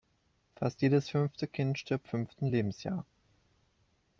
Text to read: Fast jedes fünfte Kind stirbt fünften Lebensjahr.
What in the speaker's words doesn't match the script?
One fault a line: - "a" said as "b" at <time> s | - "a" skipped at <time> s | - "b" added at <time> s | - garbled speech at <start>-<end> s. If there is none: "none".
none